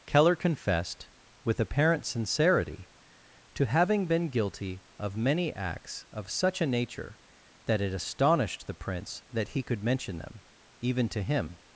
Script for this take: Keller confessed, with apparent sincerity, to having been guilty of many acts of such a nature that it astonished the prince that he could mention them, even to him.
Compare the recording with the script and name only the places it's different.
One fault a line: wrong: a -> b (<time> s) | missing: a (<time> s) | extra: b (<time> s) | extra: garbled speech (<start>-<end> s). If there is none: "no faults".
no faults